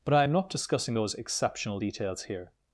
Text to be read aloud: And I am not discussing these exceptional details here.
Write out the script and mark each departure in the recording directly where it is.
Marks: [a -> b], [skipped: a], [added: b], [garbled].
[And -> But] I am not discussing [these -> those] exceptional details here.